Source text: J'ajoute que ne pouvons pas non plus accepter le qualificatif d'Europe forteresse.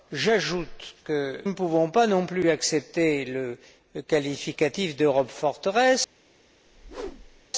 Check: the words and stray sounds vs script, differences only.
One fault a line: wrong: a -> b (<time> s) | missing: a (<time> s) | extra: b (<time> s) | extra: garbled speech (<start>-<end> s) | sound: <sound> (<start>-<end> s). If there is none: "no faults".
sound: whoosh (6.7-7.5 s)